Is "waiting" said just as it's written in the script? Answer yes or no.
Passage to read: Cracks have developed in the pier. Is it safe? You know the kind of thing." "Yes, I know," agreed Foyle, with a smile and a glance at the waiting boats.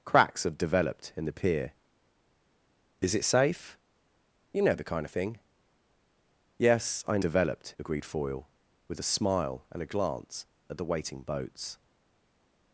yes